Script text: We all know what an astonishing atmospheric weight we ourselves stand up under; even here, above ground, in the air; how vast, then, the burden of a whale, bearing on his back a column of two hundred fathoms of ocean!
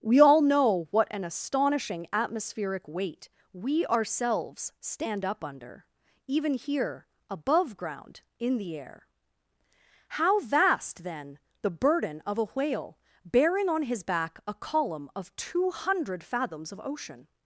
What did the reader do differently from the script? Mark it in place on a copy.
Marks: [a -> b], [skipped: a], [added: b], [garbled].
We all know what an astonishing atmospheric weight we ourselves stand up under; even here, above ground, in the air; how vast, then, the burden of a whale, bearing on his back a column of two hundred fathoms of ocean!